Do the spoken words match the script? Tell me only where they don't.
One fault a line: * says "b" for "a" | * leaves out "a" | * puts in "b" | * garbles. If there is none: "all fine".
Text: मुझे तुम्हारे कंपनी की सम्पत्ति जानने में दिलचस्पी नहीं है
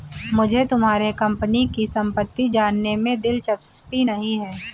all fine